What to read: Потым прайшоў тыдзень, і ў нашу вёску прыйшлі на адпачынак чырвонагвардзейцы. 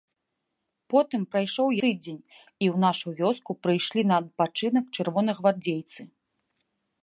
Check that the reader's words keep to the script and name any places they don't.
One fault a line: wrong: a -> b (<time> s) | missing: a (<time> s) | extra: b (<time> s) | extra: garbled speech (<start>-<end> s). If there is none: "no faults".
no faults